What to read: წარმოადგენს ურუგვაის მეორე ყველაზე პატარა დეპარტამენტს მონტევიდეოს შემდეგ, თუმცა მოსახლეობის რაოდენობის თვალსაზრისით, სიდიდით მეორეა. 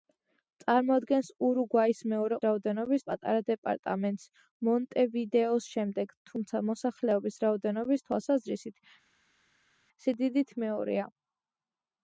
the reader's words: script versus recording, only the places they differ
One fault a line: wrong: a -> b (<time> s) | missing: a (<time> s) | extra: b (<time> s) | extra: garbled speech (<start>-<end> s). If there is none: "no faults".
wrong: ყველაზე -> რაოდენობის (2.5 s)